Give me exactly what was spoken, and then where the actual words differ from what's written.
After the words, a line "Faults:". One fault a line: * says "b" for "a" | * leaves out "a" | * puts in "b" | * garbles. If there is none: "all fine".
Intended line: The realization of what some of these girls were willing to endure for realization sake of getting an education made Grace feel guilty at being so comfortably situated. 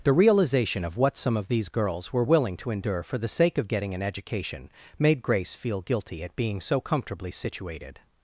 The realization of what some of these girls were willing to endure for the sake of getting an education made Grace feel guilty at being so comfortably situated.
Faults:
* says "the" for "realization"